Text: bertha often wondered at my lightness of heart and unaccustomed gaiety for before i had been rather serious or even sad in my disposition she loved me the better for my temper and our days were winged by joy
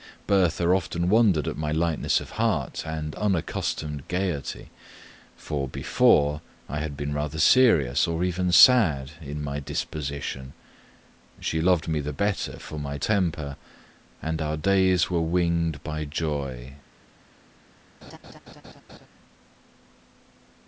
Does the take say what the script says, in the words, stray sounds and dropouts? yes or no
no